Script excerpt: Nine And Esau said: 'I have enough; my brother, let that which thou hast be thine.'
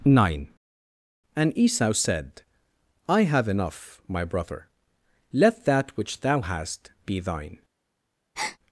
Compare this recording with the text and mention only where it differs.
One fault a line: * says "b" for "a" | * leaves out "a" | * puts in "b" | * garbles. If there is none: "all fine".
all fine